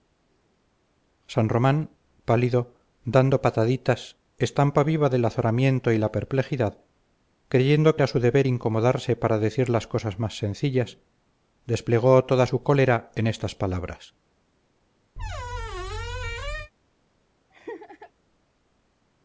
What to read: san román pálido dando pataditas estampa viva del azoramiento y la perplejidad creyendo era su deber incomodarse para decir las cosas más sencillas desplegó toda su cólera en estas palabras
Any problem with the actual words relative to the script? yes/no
no